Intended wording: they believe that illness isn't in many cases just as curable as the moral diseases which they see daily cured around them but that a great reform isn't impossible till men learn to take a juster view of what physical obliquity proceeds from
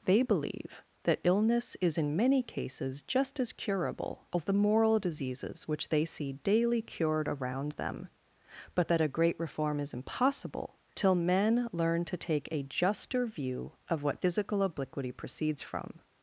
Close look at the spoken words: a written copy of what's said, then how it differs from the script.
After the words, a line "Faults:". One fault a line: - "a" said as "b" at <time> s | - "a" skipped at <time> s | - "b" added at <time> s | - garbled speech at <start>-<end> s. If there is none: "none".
they believe that illness is in many cases just as curable as the moral diseases which they see daily cured around them but that a great reform is impossible till men learn to take a juster view of what physical obliquity proceeds from
Faults:
- "isn't" said as "is" at 1.8 s
- "isn't" said as "is" at 9.8 s